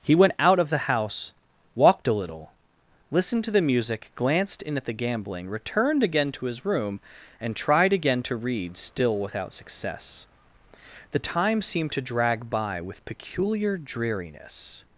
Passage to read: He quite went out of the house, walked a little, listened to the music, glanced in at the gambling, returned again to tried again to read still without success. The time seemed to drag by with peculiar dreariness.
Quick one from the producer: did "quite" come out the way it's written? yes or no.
no